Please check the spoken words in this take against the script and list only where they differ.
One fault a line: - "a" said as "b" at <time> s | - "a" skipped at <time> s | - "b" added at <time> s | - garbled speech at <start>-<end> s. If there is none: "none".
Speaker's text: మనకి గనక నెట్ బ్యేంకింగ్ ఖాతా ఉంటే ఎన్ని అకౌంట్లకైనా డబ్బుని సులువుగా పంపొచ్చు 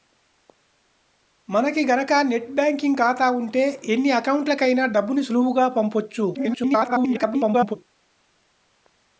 - garbled speech at 6.3-7.8 s